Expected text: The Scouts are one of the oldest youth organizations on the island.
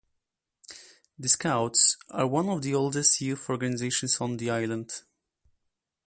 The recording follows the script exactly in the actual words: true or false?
true